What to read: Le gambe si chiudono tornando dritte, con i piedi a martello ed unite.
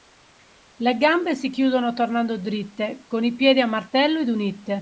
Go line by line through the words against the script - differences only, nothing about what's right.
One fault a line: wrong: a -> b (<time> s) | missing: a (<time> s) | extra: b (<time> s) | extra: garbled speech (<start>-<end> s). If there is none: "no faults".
no faults